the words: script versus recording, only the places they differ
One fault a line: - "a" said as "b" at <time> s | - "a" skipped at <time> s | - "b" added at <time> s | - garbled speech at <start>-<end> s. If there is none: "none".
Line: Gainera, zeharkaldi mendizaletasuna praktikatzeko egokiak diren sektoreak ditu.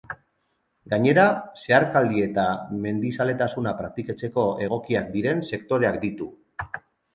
- "eta" added at 2.3 s